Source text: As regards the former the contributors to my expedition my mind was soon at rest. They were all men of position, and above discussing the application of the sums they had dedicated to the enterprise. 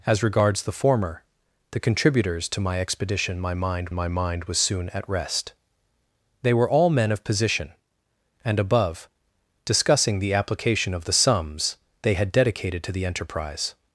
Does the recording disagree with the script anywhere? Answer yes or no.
yes